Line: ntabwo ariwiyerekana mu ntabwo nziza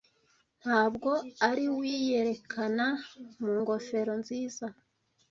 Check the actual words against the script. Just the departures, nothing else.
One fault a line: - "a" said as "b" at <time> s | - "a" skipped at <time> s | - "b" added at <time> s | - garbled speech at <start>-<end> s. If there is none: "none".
- "ntabwo" said as "ngofero" at 3.6 s